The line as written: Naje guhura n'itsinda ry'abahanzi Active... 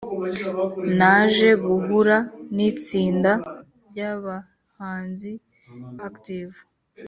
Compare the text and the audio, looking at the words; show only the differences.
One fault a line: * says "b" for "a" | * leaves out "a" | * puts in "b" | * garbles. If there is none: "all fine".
all fine